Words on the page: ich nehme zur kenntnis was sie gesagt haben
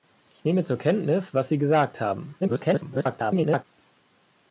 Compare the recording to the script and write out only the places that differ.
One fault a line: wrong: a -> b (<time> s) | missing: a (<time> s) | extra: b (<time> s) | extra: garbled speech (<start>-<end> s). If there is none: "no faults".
extra: garbled speech (2.4-3.6 s)